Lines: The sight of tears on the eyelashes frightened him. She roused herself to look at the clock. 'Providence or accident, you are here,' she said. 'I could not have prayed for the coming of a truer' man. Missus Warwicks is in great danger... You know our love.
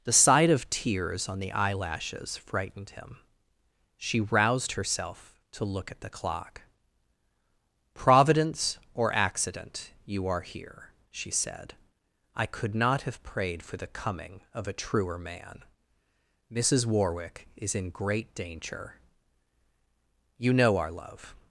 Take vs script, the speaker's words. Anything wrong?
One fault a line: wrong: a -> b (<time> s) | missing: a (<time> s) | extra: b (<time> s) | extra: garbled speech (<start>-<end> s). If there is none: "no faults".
wrong: Warwicks -> Warwick (16.9 s)